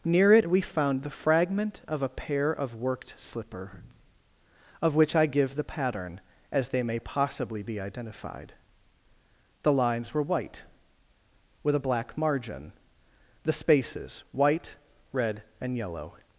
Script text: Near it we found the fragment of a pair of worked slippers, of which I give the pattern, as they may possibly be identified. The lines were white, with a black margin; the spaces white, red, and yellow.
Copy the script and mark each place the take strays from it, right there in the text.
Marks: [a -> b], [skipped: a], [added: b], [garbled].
Near it we found the fragment of a pair of worked [slippers, -> slipper] of which I give the pattern, as they may possibly be identified. The lines were white, with a black margin; the spaces white, red, and yellow.